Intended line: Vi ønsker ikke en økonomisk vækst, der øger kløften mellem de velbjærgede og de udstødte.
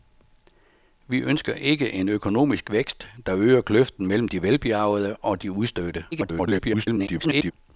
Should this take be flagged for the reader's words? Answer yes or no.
yes